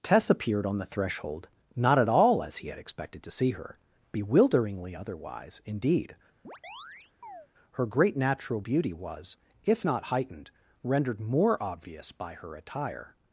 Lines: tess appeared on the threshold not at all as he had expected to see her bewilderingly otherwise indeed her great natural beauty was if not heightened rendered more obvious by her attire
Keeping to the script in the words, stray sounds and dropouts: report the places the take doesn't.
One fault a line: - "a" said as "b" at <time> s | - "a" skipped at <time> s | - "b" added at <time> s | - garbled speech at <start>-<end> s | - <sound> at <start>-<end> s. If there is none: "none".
- chirp at 6.4-7.5 s